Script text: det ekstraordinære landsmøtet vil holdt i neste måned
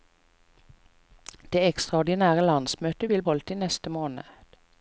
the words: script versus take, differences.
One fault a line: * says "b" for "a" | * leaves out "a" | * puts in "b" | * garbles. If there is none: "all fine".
all fine